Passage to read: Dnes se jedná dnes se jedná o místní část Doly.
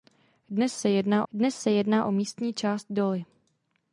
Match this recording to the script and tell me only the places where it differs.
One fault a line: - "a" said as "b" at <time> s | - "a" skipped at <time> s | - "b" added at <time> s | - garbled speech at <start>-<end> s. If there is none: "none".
none